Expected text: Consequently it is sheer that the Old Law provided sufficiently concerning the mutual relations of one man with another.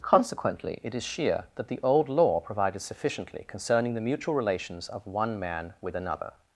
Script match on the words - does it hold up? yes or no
yes